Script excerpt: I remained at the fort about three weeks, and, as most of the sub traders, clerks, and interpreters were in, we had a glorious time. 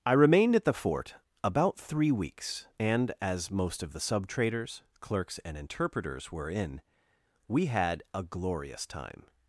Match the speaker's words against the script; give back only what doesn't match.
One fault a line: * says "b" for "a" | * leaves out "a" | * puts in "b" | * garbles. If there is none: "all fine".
all fine